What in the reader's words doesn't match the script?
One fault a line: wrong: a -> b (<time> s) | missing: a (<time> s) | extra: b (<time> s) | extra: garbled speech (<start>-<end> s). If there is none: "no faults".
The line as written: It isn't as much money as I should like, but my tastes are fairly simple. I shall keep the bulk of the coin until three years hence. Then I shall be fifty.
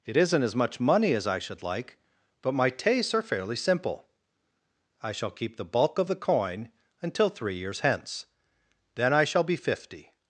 no faults